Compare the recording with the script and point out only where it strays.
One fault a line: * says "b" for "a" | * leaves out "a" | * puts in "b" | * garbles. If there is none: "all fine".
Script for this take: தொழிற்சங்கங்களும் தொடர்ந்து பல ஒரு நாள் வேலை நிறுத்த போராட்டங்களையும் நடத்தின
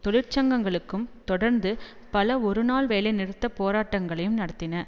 all fine